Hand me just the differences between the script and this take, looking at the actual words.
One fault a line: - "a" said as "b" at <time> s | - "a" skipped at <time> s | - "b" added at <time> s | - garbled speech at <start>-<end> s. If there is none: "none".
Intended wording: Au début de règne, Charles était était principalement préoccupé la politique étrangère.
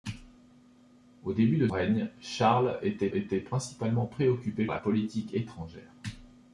none